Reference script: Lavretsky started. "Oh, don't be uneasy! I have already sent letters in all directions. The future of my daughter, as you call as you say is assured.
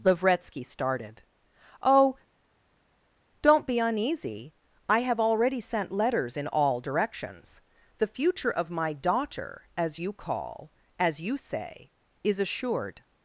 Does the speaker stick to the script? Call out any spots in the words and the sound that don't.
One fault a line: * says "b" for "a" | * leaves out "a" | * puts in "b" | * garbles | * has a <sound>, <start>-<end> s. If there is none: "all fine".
all fine